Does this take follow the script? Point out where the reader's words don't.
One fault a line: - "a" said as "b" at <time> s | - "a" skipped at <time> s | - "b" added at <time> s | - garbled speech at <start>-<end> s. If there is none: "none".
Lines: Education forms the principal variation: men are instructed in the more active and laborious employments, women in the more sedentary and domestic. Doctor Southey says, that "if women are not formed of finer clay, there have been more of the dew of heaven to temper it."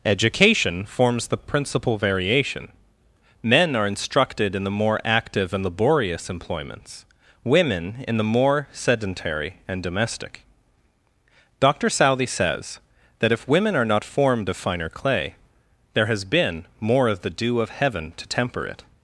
- "have" said as "has" at 16.1 s